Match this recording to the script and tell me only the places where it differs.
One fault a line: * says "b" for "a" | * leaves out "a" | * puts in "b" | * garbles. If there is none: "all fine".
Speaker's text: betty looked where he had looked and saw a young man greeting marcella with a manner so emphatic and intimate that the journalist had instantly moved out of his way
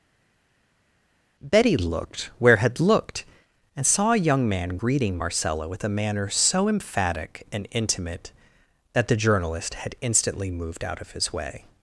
* leaves out "he"